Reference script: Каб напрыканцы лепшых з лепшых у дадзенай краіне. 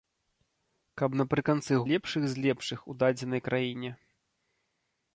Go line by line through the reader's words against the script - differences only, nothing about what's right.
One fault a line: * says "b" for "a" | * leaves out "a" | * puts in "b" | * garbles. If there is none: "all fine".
all fine